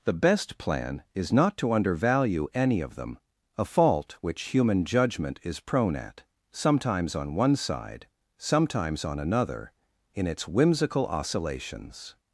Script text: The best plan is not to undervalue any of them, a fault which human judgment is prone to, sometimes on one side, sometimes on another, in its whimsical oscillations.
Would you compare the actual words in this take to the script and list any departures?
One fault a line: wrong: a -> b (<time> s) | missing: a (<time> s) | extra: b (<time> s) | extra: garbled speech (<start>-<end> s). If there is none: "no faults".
wrong: to -> at (6.0 s)